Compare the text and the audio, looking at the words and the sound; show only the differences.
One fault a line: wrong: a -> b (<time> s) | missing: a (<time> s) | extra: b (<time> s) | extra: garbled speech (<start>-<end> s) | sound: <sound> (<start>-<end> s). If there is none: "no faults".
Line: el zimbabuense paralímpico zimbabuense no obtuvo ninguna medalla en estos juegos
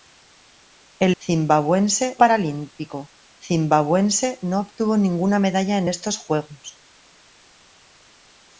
no faults